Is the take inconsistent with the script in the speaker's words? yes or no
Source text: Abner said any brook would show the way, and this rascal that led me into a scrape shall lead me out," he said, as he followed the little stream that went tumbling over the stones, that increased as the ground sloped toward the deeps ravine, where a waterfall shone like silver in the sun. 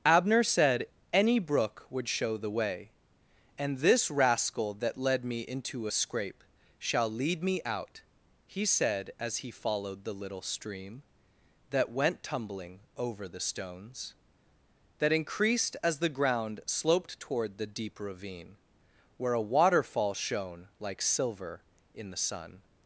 yes